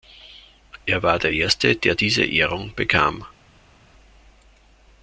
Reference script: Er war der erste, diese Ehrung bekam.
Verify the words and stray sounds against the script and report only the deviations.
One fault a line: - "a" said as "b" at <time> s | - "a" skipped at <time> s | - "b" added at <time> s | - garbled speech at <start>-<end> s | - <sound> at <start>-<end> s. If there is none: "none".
- "der" added at 1.8 s